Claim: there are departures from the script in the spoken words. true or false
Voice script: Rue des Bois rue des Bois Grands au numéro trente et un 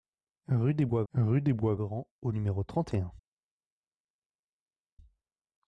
false